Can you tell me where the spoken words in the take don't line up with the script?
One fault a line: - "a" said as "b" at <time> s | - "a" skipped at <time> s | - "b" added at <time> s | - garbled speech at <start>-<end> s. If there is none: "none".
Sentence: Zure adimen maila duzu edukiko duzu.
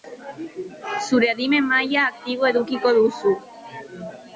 - "duzu" said as "aktibo" at 2.1 s